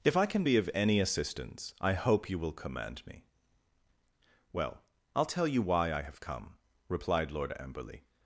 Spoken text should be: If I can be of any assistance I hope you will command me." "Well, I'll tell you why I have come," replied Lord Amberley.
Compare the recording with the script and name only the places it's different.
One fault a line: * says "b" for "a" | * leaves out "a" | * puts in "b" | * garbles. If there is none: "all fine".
all fine